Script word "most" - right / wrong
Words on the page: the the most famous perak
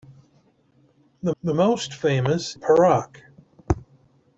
right